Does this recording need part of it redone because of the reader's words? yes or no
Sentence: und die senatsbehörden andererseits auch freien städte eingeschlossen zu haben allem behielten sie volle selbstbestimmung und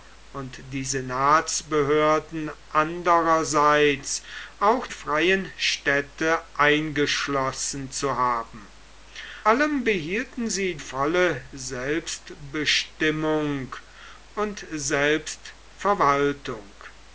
no